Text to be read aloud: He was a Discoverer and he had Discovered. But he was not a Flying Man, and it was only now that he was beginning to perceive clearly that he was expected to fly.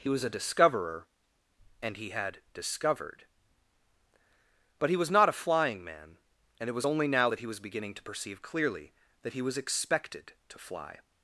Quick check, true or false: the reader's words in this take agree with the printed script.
true